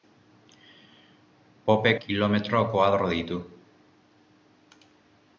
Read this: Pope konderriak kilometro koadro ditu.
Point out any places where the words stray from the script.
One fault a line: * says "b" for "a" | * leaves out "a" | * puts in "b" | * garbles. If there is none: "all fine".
* leaves out "konderriak"